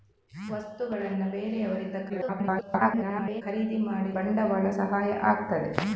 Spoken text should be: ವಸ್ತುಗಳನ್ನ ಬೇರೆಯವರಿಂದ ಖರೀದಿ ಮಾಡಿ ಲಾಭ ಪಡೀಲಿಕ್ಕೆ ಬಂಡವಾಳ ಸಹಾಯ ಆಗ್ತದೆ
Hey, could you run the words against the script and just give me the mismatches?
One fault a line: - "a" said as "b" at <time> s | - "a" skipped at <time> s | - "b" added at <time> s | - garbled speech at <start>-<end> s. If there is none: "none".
- garbled speech at 2.1-3.4 s
- "ಲಾಭ ಪಡೀಲಿಕ್ಕೆ" skipped at 4.1 s